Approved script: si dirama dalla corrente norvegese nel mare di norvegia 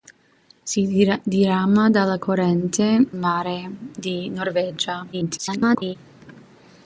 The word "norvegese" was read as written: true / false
false